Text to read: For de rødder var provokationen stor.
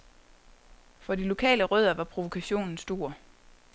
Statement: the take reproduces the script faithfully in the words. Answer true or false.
false